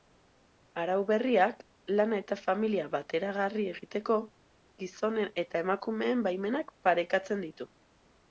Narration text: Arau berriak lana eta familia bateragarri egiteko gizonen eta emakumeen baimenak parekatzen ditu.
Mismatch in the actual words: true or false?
false